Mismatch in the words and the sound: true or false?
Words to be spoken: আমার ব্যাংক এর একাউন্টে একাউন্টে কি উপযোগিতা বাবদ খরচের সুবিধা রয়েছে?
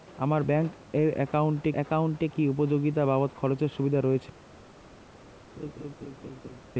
true